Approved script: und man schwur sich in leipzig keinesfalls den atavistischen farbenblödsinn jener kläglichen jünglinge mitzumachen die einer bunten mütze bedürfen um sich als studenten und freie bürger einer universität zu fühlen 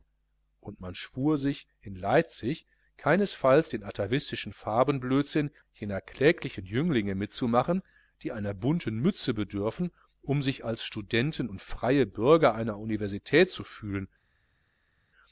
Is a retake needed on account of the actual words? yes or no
no